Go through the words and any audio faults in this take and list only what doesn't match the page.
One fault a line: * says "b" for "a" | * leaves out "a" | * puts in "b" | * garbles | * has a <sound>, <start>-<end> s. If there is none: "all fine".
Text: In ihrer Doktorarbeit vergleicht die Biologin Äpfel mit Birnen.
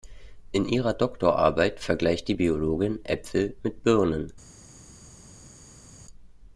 all fine